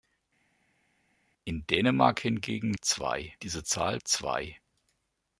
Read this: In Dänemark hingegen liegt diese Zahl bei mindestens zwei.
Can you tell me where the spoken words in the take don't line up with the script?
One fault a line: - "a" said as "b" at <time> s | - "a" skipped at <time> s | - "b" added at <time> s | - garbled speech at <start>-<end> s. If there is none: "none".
- "liegt" said as "zwei" at 2.8 s
- "bei mindestens" skipped at 4.0 s